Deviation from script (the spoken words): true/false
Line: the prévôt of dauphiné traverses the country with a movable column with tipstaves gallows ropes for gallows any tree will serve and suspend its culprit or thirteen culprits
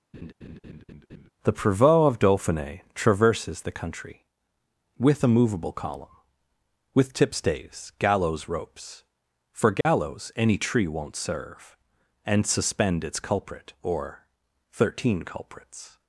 true